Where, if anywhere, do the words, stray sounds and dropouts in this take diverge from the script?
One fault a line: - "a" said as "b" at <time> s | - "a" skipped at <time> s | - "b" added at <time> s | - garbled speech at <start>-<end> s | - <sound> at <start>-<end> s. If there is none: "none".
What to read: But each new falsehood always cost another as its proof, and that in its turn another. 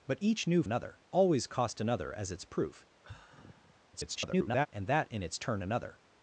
- "falsehood" said as "another" at 0.6 s
- sigh at 3.0-3.8 s
- garbled speech at 3.9-4.7 s